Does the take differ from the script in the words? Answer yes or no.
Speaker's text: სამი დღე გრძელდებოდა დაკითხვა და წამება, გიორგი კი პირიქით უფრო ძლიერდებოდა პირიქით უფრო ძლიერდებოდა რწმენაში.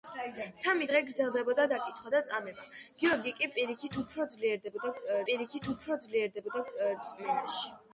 no